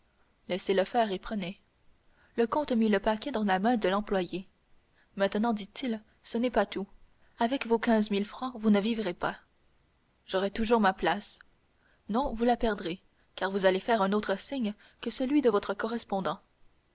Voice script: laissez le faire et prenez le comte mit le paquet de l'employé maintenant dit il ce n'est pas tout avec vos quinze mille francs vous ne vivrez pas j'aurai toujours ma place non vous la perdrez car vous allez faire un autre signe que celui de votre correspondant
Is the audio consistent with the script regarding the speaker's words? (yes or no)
no